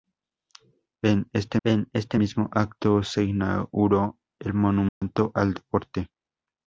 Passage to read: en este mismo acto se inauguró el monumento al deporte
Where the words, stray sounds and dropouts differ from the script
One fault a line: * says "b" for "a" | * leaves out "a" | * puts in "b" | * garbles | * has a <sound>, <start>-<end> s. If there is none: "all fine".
* puts in "en este"
* has a dropout, 4.9-5.0 s